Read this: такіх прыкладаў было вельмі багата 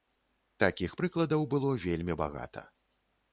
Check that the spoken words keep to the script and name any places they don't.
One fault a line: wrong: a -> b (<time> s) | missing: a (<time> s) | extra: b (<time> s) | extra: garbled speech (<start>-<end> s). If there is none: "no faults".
no faults